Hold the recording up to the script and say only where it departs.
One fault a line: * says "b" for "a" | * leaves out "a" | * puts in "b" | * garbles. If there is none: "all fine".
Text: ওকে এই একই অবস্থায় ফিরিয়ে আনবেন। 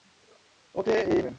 * leaves out "একই অবস্থায় ফিরিয়ে"